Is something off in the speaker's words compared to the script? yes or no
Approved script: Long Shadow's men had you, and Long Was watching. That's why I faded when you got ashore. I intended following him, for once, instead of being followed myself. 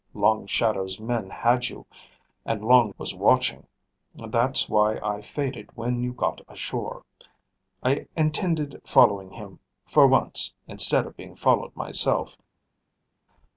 no